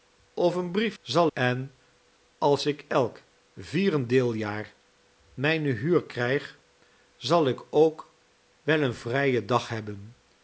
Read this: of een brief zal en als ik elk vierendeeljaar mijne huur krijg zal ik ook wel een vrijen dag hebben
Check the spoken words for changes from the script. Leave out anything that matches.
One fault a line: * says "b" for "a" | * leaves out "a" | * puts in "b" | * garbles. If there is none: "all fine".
all fine